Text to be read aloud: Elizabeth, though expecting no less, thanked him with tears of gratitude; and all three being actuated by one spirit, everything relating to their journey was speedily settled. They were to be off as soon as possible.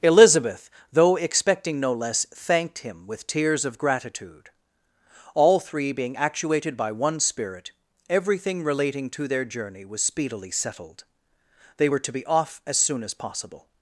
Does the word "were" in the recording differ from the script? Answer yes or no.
no